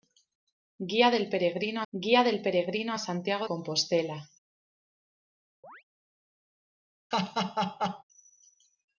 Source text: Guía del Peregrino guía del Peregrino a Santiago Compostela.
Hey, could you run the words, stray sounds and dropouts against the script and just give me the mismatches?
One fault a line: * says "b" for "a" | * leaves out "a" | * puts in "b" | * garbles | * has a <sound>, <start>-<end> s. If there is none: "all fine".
* has a chirp, 5.6-5.8 s
* has a laugh, 7.1-8.0 s